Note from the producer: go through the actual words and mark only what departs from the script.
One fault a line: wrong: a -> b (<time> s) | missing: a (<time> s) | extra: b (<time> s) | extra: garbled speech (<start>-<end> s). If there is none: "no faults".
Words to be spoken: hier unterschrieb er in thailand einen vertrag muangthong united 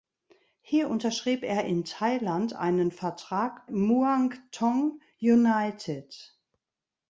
no faults